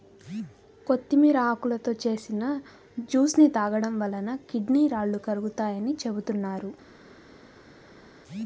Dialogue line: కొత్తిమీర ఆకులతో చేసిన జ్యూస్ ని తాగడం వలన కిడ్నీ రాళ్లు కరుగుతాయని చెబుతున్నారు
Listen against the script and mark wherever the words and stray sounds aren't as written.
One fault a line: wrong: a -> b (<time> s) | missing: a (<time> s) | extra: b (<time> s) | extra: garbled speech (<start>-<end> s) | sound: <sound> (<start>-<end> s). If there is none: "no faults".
no faults